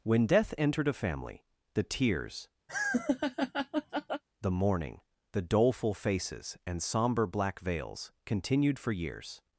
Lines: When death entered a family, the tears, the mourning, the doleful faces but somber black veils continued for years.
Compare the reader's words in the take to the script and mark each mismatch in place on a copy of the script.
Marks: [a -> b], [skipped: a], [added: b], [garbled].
When death entered a family, the tears, the mourning, the doleful faces [but -> and] somber black veils continued for years.